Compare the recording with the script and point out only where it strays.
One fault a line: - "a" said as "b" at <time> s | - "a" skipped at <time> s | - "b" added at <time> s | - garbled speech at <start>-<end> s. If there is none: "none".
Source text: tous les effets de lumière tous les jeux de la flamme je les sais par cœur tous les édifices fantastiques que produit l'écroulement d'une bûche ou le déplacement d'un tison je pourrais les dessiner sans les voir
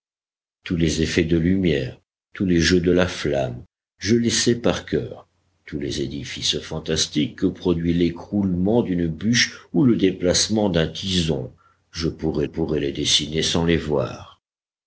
- "pourrais" added at 12.4 s